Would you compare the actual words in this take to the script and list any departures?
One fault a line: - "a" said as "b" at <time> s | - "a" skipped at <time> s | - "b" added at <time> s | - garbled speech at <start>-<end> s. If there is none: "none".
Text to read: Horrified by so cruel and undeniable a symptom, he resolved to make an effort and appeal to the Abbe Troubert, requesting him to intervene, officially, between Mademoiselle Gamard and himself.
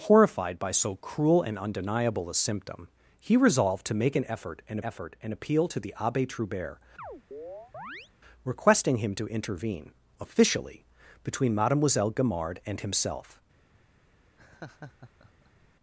- "effort and" added at 4.8 s